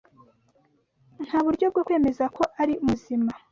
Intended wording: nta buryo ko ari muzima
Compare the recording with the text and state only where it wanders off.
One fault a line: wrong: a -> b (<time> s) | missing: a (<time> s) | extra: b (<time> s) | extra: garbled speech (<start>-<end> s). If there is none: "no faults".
extra: bwo kwemeza (1.7 s)